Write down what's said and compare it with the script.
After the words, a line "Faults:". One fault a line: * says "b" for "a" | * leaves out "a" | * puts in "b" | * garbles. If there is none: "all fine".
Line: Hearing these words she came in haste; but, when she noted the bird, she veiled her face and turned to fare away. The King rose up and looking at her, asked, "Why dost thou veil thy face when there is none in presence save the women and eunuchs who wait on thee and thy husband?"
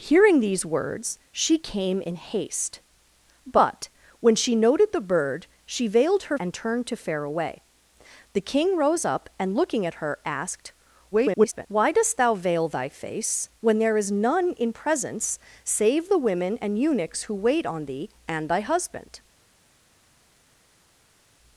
Hearing these words she came in haste; but, when she noted the bird, she veiled her and turned to fare away. The King rose up and looking at her, asked, [garbled] "Why dost thou veil thy face when there is none in presence save the women and eunuchs who wait on thee and thy husband?"
Faults:
* leaves out "face"
* garbles